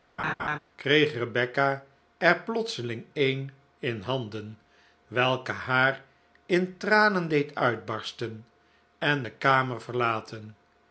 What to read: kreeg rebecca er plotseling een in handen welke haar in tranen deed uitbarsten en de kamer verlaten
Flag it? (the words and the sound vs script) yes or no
yes